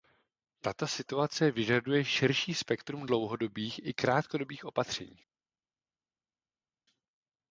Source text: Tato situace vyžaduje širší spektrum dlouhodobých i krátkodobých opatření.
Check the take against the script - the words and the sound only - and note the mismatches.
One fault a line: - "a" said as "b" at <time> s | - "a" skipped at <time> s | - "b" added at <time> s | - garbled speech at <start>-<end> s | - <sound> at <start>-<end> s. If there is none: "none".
none